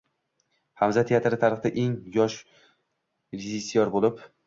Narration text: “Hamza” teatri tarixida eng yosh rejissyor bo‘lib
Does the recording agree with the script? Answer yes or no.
yes